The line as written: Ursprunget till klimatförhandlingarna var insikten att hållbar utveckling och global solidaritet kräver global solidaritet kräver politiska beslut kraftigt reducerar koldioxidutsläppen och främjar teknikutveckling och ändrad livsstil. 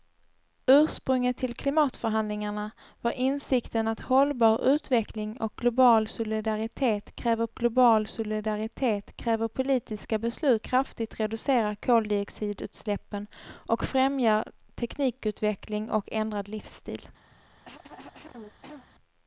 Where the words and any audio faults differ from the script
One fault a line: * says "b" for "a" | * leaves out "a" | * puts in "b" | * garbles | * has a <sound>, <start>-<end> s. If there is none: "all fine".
* has a cough, 17.3-18.9 s